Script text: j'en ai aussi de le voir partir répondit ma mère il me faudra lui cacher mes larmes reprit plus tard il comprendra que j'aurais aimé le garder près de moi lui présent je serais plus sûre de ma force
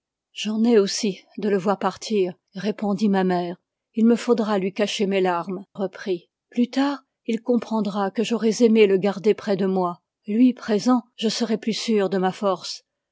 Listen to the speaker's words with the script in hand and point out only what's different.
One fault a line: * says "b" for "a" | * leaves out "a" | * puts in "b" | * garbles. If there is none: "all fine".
all fine